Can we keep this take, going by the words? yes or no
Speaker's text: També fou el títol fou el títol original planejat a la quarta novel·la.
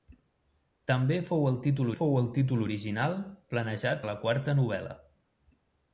yes